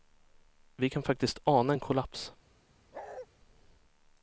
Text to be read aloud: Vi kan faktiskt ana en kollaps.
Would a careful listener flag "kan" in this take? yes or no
no